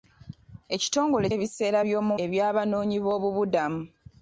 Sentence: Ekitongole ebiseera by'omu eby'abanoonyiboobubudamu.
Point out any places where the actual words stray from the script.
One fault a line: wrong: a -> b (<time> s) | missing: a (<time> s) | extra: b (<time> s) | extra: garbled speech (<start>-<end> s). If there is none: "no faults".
no faults